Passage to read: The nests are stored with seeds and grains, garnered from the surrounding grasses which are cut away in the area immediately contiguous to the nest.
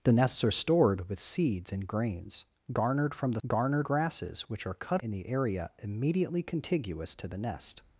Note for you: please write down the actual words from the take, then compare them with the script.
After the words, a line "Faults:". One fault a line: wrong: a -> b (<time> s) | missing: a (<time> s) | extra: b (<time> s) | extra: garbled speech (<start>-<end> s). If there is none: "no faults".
The nests are stored with seeds and grains, garnered from the garnered grasses which are cut in the area immediately contiguous to the nest.
Faults:
wrong: surrounding -> garnered (3.5 s)
missing: away (5.0 s)